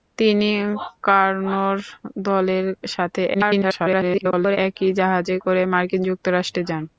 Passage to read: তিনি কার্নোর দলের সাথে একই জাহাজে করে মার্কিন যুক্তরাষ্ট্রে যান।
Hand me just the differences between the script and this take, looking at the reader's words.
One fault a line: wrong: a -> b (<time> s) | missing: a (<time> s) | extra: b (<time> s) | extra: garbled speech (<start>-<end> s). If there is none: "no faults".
extra: garbled speech (3.3-4.6 s)